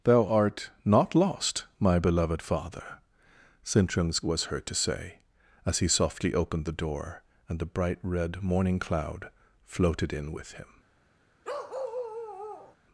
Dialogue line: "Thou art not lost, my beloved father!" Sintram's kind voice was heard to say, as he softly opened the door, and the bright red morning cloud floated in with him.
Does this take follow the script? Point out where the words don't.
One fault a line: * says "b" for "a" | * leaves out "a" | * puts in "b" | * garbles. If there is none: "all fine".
* leaves out "kind voice"